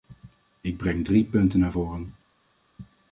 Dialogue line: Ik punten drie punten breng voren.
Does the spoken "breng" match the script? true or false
false